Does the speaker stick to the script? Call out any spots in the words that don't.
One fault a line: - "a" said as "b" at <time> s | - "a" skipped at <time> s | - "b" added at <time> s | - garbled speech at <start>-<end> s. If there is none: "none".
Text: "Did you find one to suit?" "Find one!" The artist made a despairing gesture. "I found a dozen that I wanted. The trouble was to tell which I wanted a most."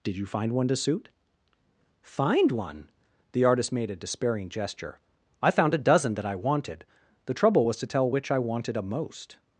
none